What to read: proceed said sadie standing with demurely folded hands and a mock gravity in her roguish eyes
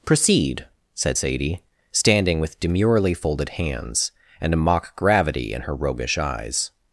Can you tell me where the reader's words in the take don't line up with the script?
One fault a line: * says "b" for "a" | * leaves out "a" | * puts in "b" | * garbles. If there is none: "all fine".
all fine